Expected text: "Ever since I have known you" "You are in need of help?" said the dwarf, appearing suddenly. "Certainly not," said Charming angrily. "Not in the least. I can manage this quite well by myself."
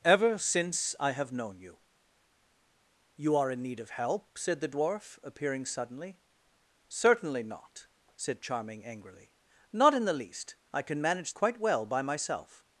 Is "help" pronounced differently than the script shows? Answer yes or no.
no